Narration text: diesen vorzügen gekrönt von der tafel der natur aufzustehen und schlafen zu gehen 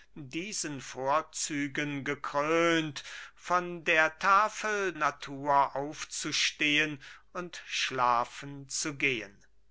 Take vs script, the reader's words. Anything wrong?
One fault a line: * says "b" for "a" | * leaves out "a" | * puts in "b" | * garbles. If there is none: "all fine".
* leaves out "der"